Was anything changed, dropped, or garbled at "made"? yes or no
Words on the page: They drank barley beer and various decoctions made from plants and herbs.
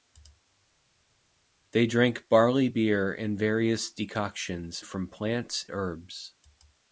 yes